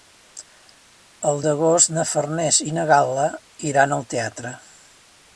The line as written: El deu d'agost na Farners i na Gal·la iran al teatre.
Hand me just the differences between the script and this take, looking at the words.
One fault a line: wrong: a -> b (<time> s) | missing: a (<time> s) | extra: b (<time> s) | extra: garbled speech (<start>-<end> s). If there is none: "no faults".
missing: deu (1.4 s)